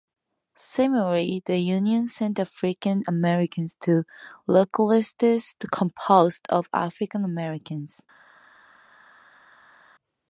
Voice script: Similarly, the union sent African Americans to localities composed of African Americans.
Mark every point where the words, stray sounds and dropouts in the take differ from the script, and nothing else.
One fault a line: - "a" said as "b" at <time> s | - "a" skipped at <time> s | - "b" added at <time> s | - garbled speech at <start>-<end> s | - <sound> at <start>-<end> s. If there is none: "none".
none